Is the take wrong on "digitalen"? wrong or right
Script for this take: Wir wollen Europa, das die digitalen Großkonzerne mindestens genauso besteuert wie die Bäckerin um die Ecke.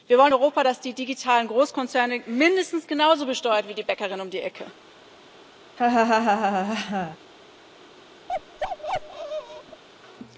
right